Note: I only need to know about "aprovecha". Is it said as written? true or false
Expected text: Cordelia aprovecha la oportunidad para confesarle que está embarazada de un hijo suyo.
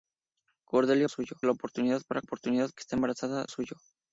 false